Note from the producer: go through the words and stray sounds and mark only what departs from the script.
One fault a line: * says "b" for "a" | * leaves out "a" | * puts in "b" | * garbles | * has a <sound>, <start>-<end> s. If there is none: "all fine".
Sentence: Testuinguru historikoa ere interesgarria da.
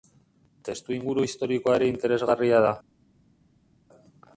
all fine